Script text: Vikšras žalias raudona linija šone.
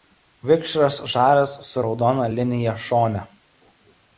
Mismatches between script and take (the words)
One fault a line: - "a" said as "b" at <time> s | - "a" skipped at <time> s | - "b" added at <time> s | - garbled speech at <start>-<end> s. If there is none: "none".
- "su" added at 1.7 s